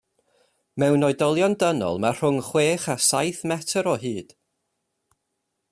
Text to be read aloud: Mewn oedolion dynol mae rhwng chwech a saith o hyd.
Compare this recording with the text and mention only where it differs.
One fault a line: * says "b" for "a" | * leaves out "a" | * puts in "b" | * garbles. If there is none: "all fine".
* puts in "metr"